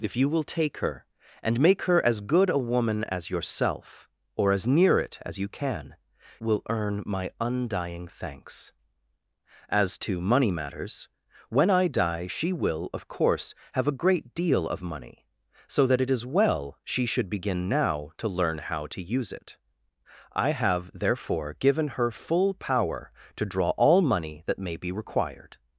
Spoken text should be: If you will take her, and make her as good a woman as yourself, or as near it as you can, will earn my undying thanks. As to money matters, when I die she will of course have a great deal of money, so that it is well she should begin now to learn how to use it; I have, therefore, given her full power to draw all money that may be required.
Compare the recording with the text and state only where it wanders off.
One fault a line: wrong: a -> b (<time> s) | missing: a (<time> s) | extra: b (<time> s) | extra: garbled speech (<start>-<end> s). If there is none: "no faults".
no faults